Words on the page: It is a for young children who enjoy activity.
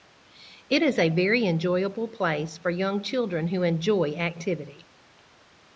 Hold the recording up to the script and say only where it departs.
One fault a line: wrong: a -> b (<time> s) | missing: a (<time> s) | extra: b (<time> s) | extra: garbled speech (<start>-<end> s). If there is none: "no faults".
extra: very enjoyable place (1.1 s)